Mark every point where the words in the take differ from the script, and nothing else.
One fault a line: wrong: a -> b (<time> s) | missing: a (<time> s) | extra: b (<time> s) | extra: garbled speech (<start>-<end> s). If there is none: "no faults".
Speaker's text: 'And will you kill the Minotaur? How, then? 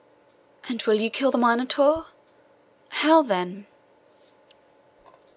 no faults